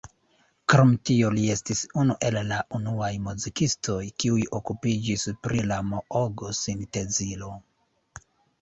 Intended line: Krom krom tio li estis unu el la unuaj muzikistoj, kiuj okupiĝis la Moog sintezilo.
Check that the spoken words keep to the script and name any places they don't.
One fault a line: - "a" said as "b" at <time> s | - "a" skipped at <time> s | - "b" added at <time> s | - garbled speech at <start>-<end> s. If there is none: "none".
- "krom" skipped at 0.9 s
- "pri" added at 5.4 s